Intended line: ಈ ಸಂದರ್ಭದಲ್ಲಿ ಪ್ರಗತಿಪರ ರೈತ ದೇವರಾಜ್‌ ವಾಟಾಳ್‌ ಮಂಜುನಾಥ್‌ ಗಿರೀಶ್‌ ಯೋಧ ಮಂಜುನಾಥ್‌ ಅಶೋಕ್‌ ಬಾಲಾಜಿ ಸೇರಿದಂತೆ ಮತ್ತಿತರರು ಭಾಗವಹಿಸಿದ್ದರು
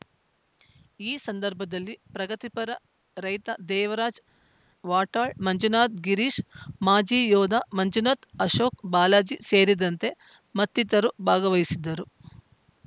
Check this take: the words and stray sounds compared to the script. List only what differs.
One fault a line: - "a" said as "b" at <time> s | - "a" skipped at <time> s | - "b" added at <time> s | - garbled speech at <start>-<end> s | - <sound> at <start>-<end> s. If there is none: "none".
- "ಮಾಜಿ" added at 6.8 s